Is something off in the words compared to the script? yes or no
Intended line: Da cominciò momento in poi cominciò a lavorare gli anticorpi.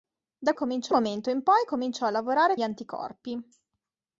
no